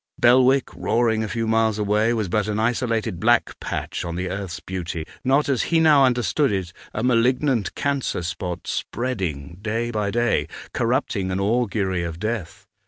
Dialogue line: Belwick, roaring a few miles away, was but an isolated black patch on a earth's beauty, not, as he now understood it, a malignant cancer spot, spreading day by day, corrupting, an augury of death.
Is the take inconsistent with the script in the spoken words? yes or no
yes